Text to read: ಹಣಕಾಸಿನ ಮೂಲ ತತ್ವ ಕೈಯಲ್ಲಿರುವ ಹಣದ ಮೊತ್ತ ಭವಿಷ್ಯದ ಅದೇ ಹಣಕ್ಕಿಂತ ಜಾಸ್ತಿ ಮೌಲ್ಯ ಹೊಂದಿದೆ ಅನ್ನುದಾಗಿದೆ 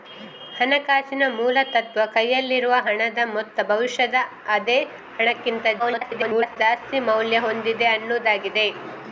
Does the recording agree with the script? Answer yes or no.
no